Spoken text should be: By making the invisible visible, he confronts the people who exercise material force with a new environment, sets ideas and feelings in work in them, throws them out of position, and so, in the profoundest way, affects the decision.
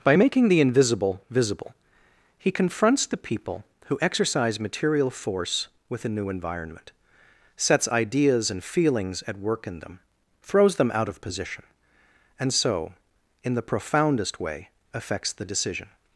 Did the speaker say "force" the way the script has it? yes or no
yes